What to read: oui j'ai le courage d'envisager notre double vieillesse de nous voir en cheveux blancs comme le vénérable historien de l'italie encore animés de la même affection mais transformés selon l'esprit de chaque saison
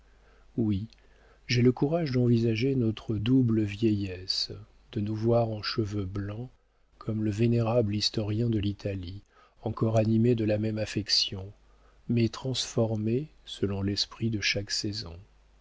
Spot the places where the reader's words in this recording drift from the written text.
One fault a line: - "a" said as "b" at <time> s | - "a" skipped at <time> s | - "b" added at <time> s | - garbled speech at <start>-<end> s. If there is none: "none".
none